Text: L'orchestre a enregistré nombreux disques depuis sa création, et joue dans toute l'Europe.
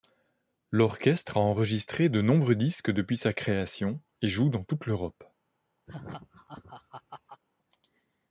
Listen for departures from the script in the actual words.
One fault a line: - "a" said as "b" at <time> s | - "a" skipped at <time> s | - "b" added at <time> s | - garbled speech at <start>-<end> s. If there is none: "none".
- "de" added at 2.1 s